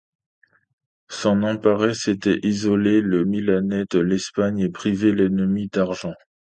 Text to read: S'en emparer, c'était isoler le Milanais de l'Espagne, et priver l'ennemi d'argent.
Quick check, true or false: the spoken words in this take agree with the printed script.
true